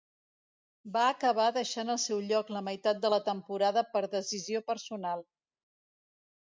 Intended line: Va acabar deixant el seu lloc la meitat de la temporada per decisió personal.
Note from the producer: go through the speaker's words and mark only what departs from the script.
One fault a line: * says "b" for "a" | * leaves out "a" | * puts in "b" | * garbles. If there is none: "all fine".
all fine